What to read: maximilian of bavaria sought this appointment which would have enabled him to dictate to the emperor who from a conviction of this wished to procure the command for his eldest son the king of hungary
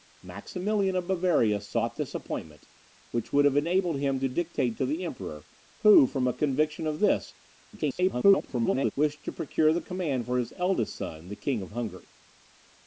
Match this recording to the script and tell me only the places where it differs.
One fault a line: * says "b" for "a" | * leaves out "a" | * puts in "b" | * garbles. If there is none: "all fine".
* garbles